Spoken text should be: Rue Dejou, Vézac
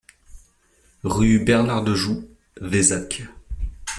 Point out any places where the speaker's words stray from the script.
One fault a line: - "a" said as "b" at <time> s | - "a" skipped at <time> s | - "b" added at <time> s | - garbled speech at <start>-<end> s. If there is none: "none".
- "Bernard" added at 1.4 s